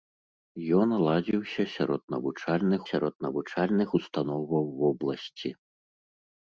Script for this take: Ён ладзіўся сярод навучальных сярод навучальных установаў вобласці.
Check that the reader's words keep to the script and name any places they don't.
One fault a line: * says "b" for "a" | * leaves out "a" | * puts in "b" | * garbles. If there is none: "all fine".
all fine